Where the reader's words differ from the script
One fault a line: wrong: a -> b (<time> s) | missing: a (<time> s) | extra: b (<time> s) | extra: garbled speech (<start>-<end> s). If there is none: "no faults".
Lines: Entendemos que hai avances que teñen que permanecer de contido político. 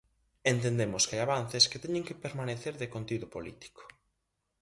no faults